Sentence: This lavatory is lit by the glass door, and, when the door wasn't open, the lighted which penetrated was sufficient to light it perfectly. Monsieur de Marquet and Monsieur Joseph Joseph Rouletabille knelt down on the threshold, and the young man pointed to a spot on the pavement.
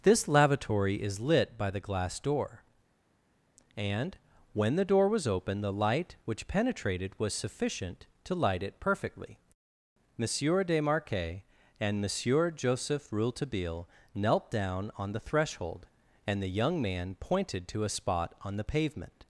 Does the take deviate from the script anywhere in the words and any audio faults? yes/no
yes